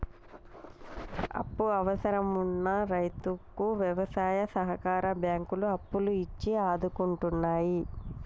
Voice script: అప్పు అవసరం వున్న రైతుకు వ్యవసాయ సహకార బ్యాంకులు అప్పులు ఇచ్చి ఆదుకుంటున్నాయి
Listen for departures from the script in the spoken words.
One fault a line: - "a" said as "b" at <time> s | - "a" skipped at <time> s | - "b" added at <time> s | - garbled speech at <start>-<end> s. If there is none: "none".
none